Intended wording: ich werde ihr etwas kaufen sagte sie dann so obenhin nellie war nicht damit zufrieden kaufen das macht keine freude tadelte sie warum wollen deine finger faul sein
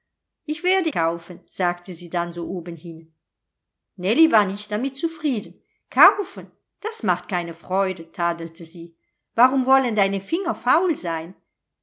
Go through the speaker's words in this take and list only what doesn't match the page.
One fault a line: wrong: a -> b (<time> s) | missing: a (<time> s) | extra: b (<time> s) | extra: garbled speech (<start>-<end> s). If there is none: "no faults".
missing: ihr etwas (0.9 s)